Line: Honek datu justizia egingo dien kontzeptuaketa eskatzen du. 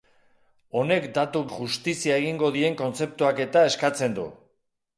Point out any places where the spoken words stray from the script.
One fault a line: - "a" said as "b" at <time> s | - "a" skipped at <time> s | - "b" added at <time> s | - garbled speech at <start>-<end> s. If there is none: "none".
none